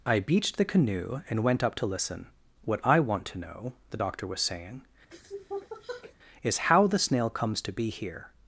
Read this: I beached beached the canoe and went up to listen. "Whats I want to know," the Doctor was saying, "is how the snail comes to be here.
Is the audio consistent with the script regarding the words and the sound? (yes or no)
no